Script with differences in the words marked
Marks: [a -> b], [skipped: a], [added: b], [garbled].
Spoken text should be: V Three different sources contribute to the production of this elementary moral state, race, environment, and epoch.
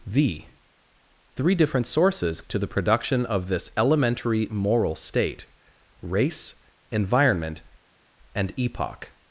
V Three different sources [skipped: contribute] to the production of this elementary moral state, race, environment, and epoch.